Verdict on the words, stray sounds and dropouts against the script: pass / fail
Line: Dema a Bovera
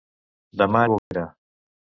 fail